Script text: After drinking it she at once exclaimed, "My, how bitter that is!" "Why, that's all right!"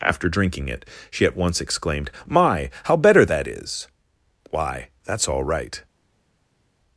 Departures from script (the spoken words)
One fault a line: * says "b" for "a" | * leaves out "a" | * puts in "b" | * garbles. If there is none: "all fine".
* says "better" for "bitter"